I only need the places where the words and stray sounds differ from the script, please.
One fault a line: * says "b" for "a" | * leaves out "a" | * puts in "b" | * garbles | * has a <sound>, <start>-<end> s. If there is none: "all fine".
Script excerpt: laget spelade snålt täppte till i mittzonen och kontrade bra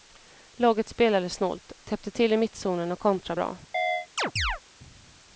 * has a chirp, 3.7-4.6 s